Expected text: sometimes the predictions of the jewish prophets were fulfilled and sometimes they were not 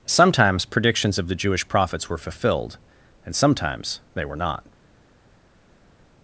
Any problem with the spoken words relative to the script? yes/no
yes